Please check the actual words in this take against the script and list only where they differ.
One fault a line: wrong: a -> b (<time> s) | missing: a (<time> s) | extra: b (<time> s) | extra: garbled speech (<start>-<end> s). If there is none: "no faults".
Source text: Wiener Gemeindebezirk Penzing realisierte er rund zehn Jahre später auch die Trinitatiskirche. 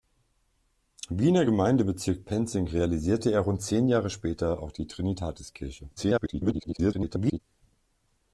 extra: garbled speech (6.0-7.4 s)